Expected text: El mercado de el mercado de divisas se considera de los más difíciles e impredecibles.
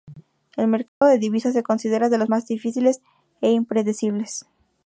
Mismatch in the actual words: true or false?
true